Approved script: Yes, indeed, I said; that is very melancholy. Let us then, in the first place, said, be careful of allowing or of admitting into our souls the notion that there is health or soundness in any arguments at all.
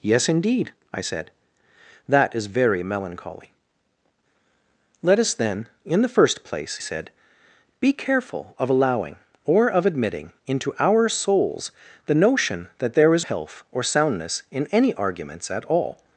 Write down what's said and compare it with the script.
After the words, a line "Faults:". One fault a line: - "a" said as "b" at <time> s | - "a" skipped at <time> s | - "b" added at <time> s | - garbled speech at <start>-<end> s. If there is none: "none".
Yes, indeed, I said; that is very melancholy. Let us then, in the first place, said, be careful of allowing or of admitting into our souls the notion that there is health or soundness in any arguments at all.
Faults:
none